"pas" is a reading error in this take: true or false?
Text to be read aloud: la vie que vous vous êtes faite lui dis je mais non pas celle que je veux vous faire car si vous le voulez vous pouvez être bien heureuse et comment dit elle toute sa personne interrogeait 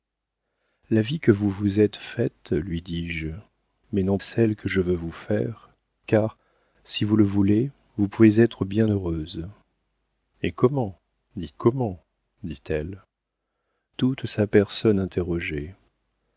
true